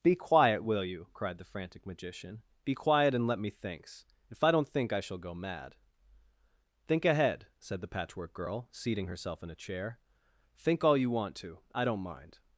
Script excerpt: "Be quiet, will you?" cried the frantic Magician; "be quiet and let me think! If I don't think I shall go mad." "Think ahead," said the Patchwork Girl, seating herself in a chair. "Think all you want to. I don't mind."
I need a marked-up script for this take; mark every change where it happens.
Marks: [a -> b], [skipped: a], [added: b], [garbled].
"Be quiet, will you?" cried the frantic Magician; "be quiet and let me [think! -> thinks] If I don't think I shall go mad." "Think ahead," said the Patchwork Girl, seating herself in a chair. "Think all you want to. I don't mind."